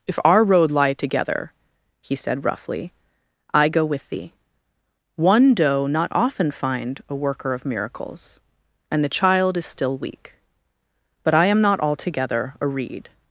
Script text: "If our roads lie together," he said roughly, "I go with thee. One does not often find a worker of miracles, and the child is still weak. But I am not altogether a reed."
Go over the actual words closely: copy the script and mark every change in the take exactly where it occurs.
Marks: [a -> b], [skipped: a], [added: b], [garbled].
"If our [roads -> road] lie together," he said roughly, "I go with thee. One [does -> doe] not often find a worker of miracles, and the child is still weak. But I am not altogether a reed."